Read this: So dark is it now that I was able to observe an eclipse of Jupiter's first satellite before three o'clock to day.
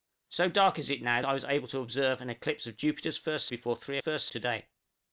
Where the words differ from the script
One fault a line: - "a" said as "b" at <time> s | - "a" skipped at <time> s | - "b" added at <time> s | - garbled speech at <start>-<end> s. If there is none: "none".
- "that" skipped at 1.2 s
- "satellite" skipped at 3.5 s
- "o'clock" said as "first" at 4.0 s